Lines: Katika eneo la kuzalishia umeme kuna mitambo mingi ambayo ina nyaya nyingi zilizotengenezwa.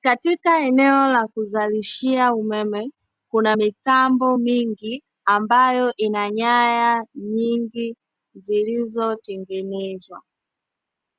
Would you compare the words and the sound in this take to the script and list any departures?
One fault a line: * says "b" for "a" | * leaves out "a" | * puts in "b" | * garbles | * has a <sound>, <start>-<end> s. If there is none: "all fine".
all fine